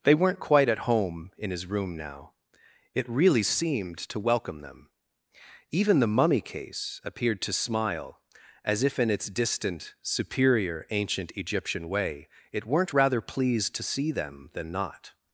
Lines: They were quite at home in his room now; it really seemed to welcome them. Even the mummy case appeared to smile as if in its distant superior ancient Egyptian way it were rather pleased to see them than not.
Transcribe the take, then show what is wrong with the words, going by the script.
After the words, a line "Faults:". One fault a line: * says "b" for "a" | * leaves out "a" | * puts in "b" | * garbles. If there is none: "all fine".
They weren't quite at home in his room now; it really seemed to welcome them. Even the mummy case appeared to smile as if in its distant superior ancient Egyptian way it weren't rather pleased to see them than not.
Faults:
* says "weren't" for "were"
* says "weren't" for "were"